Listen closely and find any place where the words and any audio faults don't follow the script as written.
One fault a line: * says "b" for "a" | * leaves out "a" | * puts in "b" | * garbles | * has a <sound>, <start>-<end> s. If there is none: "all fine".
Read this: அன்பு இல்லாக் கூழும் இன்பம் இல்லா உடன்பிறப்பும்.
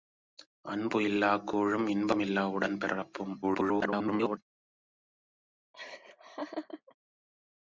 * garbles
* has a laugh, 5.7-6.9 s